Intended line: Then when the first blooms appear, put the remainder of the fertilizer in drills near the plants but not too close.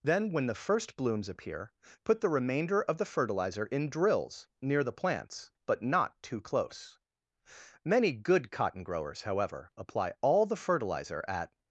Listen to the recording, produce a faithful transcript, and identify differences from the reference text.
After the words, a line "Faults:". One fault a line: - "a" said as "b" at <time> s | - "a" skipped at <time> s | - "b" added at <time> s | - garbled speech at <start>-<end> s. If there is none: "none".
Then when the first blooms appear, put the remainder of the fertilizer in drills near the plants but not too close. Many good cotton growers, however, apply all the fertilizer at
Faults:
- "Many good cotton growers however apply all the fertilizer at" added at 7.8 s